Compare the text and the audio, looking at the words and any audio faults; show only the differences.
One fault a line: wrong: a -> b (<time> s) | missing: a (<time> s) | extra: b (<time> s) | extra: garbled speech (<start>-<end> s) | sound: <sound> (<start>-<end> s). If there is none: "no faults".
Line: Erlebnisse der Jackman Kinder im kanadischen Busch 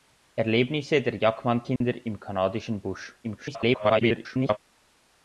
sound: dropout (1.8-1.8 s)
extra: garbled speech (3.2-4.6 s)